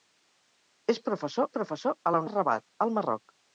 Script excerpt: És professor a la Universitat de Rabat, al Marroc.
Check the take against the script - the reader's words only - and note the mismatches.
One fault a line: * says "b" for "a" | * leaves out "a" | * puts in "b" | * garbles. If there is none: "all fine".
* puts in "professor"
* leaves out "Universitat"